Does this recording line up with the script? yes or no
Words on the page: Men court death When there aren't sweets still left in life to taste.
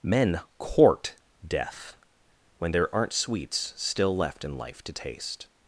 yes